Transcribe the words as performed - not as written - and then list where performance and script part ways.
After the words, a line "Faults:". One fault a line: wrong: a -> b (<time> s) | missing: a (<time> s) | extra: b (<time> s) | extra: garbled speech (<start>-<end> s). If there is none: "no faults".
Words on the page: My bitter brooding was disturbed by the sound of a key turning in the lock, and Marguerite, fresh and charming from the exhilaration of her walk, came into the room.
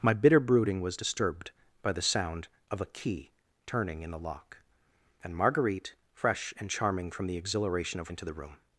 My bitter brooding was disturbed by the sound of a key turning in the lock, and Marguerite, fresh and charming from the exhilaration of into the room.
Faults:
missing: her walk came (8.1 s)